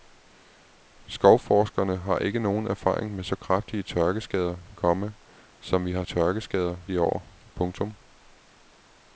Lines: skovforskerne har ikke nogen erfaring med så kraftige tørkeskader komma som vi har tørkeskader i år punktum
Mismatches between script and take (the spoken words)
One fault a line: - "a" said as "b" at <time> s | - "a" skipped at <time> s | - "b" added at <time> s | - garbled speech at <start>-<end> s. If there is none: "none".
none